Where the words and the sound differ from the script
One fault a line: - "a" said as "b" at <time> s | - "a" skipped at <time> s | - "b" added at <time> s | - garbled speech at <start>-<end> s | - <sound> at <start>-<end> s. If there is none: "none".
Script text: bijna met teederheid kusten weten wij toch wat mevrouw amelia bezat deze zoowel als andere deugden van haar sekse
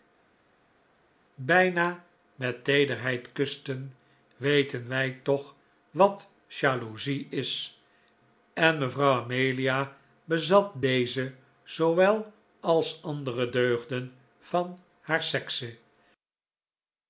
- "jaloezie is en" added at 6.5 s